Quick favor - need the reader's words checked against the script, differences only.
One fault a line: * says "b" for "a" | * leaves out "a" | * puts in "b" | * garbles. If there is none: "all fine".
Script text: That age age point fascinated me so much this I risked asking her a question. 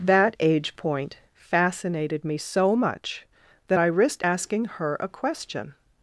* leaves out "age"
* says "that" for "this"